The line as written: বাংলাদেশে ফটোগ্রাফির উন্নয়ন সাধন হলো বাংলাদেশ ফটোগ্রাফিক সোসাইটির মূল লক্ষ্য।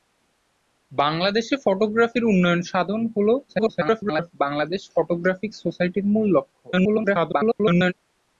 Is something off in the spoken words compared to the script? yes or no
yes